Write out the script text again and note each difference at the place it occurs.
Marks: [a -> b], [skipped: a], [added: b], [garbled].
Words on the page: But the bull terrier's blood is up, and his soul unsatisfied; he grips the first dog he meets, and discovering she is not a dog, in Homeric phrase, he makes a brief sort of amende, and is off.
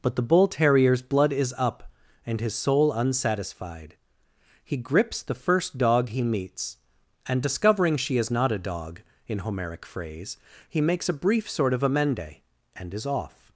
But the bull terrier's blood is up, and his soul unsatisfied; he grips the first dog he meets, and discovering she is not a dog, in Homeric phrase, he makes a brief sort of amende, and is off.